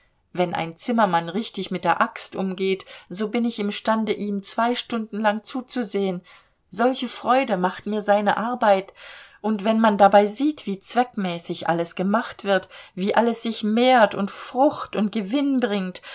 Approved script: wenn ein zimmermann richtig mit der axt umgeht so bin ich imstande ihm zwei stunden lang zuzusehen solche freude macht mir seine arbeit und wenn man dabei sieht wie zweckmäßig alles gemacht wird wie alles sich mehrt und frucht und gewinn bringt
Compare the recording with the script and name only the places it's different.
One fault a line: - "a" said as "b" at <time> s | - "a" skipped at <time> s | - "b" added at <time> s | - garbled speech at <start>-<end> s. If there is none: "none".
none